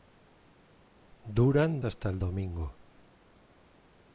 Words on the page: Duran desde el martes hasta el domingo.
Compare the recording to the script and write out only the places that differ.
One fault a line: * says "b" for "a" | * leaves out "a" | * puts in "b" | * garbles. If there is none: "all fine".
* leaves out "desde el martes"